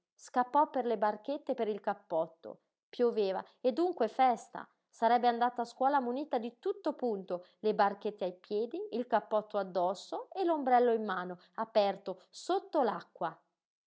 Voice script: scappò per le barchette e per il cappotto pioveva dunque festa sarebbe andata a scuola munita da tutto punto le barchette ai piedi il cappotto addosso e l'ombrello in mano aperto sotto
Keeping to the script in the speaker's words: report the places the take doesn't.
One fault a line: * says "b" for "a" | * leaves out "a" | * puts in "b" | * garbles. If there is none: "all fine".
* puts in "e"
* says "di" for "da"